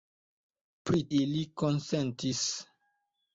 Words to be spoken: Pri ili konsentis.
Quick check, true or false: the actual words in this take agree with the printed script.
true